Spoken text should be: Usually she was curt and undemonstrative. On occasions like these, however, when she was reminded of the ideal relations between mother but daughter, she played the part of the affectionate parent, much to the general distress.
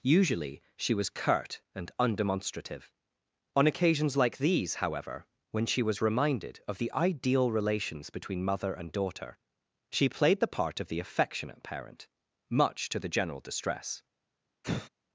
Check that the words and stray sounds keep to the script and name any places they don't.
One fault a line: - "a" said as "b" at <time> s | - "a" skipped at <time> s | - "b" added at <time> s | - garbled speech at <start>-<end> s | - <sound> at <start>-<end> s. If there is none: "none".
- "but" said as "and" at 8.7 s
- sigh at 14.6-14.9 s